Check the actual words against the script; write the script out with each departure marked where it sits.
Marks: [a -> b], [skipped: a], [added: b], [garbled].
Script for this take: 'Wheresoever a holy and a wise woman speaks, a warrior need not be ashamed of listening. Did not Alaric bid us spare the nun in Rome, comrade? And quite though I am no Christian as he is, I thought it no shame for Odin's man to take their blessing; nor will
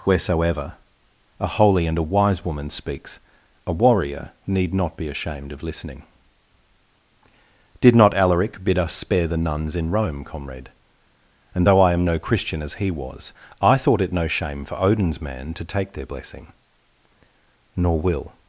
'Wheresoever a holy and a wise woman speaks, a warrior need not be ashamed of listening. Did not Alaric bid us spare the [nun -> nuns] in Rome, comrade? And [skipped: quite] though I am no Christian as he [is, -> was] I thought it no shame for Odin's man to take their blessing; nor will